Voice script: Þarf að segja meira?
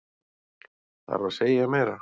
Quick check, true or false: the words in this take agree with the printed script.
true